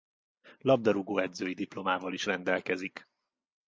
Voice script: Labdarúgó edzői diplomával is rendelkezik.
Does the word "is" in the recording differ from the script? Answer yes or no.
no